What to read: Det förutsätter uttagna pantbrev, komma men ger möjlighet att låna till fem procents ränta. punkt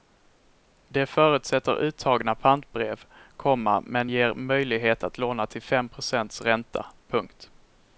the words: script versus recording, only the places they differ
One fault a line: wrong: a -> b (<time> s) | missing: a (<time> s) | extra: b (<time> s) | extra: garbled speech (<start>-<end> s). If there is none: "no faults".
no faults